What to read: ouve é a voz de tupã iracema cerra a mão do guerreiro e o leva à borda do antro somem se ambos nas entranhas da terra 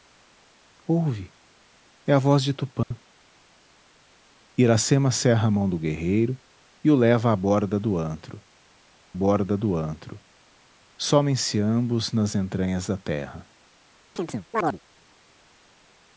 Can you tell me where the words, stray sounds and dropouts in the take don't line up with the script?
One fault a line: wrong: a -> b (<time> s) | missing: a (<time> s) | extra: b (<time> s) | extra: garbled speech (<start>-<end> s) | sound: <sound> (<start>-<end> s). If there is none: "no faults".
sound: dropout (2.8-2.9 s)
extra: borda do antro (9.1 s)
sound: chirp (14.2-14.8 s)